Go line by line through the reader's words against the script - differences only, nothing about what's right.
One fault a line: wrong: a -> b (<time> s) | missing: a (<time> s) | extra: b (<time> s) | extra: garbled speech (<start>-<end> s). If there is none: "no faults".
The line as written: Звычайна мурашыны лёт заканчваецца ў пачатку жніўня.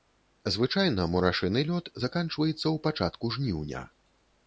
no faults